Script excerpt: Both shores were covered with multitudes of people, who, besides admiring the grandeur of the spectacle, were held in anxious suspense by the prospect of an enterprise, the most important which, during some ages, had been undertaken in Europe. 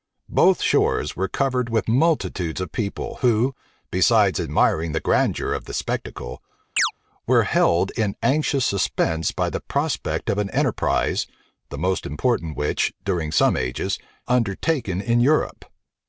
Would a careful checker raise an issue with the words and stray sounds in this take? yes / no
yes